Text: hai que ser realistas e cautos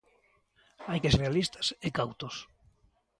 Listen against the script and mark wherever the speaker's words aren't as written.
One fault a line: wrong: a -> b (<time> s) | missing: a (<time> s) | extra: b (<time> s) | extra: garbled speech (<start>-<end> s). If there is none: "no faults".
missing: ser (1.1 s)